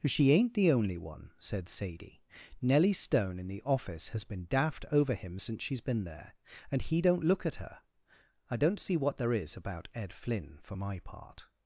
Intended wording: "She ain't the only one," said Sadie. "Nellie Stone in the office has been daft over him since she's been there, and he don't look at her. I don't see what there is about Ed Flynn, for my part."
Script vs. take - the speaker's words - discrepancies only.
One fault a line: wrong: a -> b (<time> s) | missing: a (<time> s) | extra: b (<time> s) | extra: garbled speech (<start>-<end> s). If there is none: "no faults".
no faults